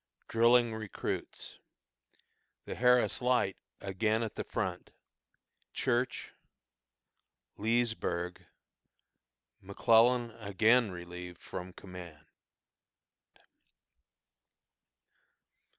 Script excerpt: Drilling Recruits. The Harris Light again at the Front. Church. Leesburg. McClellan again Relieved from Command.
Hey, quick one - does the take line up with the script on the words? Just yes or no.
yes